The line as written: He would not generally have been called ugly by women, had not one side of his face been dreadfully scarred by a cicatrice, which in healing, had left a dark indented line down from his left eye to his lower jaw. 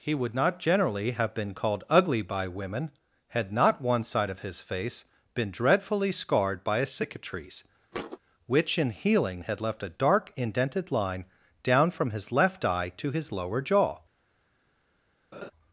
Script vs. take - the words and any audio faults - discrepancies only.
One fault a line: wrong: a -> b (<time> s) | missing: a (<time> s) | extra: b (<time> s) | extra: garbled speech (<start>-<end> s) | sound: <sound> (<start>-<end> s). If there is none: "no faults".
sound: thud (7.9-8.2 s)
sound: laugh (15.3-15.5 s)